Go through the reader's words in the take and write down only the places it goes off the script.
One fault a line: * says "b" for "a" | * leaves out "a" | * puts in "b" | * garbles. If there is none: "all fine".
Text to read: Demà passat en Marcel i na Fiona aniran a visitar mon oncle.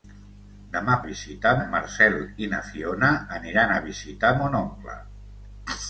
* says "visitar" for "passat"